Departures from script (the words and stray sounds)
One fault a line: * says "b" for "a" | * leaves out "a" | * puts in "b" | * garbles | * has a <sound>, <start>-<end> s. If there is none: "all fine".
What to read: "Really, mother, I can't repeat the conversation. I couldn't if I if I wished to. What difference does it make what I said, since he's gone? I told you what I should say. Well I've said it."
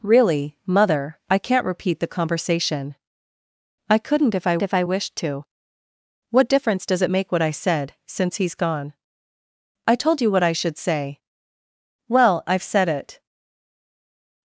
all fine